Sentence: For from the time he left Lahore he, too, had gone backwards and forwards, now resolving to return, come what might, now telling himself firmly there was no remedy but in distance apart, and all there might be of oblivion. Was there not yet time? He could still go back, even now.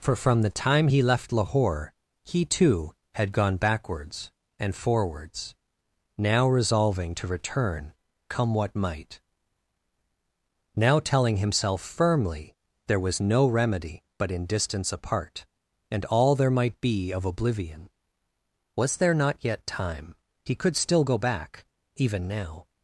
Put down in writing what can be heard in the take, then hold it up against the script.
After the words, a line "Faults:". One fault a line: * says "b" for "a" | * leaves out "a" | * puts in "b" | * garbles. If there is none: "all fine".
For from the time he left Lahore he, too, had gone backwards and forwards, now resolving to return, come what might, now telling himself firmly there was no remedy but in distance apart, and all there might be of oblivion. Was there not yet time? He could still go back, even now.
Faults:
all fine